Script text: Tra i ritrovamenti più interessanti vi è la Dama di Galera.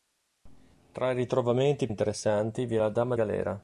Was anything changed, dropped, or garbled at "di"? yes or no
yes